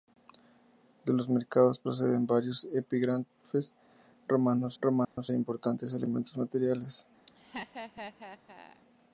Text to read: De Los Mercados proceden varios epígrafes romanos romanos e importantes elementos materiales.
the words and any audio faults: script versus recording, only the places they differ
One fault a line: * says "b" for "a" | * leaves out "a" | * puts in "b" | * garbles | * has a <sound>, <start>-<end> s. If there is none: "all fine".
* has a dropout, 5.0-5.2 s
* has a laugh, 7.3-8.8 s